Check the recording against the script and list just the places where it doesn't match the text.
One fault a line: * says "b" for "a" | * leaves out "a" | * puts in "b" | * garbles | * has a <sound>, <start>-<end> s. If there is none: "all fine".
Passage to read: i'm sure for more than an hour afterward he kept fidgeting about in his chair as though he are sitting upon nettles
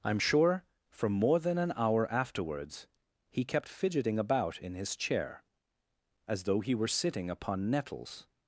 * says "afterwards" for "afterward"
* says "were" for "are"